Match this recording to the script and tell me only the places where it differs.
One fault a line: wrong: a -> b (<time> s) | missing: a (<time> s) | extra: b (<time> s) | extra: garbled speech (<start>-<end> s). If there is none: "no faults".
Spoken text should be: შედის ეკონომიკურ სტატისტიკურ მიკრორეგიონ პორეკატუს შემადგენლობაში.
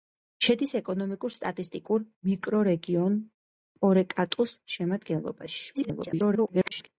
extra: garbled speech (5.7-6.9 s)